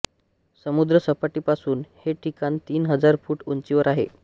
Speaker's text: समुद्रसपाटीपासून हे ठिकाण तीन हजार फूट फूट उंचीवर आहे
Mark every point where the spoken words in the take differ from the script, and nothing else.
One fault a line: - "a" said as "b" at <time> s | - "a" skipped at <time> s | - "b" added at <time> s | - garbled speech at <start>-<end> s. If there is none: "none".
- "फूट" skipped at 3.4 s